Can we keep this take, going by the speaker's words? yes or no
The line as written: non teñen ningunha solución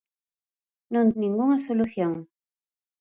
no